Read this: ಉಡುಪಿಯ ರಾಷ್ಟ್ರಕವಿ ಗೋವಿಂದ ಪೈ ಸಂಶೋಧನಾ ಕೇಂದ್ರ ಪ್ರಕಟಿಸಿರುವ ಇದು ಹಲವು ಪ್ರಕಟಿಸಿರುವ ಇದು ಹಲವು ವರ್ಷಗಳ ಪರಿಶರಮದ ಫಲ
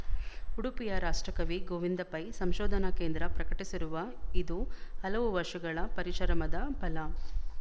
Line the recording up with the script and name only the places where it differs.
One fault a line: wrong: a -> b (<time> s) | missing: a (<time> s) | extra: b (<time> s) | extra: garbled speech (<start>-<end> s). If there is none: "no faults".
missing: ಪ್ರಕಟಿಸಿರುವ ಇದು ಹಲವು (5.3 s)